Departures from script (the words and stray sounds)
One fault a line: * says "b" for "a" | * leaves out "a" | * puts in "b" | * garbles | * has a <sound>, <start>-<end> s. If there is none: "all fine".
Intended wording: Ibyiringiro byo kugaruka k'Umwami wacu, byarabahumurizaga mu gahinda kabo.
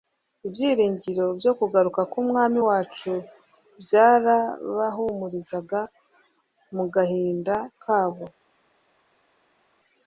all fine